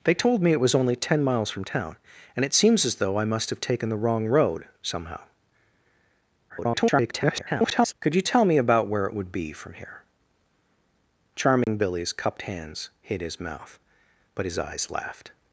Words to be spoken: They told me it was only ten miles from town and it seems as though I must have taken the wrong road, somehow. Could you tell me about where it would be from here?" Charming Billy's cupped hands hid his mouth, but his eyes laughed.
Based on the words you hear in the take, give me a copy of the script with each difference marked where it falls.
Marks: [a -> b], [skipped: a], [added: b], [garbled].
They told me it was only ten miles from town and it seems as though I must have taken the wrong road, somehow. [garbled] Could you tell me about where it would be from here?" Charming Billy's cupped hands hid his mouth, but his eyes laughed.